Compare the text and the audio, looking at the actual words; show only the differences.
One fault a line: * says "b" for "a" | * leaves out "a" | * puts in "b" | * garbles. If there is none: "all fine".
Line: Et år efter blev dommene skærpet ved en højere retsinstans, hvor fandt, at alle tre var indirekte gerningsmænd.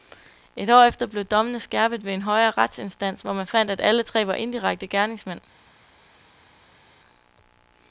* puts in "man"